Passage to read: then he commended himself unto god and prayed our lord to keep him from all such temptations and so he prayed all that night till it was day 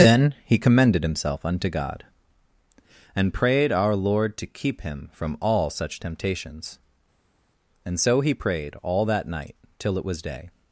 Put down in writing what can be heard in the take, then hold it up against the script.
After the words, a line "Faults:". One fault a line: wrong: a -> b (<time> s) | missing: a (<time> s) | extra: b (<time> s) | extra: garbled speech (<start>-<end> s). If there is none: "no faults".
then he commended himself unto god and prayed our lord to keep him from all such temptations and so he prayed all that night till it was day
Faults:
no faults